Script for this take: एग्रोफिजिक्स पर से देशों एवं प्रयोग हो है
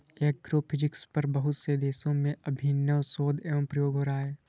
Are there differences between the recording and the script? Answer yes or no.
yes